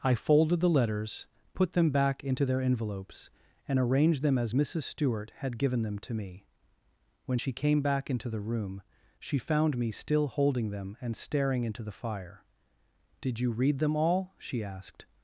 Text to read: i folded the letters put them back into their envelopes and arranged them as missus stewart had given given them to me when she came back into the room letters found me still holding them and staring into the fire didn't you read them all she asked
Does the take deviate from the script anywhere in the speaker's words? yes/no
yes